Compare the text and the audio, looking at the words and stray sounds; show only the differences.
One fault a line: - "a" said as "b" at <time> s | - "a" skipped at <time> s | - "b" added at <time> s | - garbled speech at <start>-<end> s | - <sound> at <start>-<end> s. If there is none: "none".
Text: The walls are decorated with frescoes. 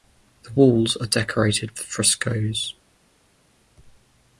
- "with" skipped at 1.8 s